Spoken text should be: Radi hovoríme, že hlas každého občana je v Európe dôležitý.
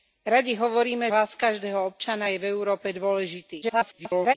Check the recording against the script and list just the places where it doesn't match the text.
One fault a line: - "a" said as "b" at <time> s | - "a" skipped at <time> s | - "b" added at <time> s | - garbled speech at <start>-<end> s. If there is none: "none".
- "že" skipped at 1.1 s
- garbled speech at 3.6-4.3 s